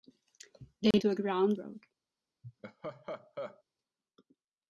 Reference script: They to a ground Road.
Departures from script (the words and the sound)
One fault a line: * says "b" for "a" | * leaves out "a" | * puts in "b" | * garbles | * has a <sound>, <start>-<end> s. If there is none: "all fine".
* has a dropout, 0.9-0.9 s
* has a laugh, 2.4-3.6 s